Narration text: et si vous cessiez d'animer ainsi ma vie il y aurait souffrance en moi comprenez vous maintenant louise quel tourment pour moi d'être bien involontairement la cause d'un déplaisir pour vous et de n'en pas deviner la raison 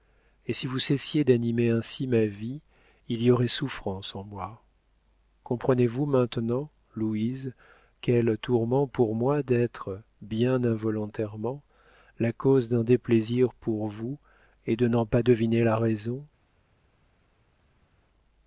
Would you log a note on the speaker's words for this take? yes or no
no